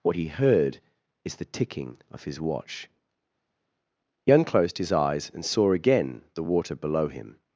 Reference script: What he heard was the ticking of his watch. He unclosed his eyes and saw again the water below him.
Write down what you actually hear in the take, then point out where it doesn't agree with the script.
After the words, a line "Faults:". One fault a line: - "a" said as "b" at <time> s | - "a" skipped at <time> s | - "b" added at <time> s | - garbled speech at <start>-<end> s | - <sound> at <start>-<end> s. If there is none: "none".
What he heard is the ticking of his watch. He unclosed his eyes and saw again the water below him.
Faults:
- "was" said as "is" at 1.2 s